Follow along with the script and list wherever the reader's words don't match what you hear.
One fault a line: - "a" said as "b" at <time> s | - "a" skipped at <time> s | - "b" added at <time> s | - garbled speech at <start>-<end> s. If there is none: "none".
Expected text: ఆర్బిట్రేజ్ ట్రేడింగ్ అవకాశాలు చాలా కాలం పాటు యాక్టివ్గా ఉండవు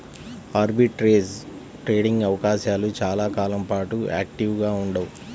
none